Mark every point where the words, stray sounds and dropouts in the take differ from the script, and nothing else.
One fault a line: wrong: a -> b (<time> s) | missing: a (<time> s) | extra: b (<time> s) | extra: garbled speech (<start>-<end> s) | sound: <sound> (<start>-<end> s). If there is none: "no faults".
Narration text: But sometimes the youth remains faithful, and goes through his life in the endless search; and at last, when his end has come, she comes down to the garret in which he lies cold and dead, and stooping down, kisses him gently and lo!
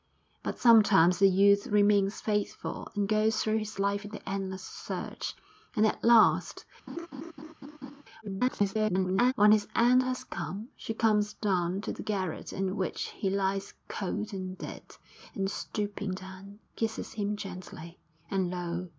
sound: laugh (6.9-8.0 s)
extra: garbled speech (8.2-9.3 s)